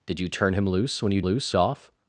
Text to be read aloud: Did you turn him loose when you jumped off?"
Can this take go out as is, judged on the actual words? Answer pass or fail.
fail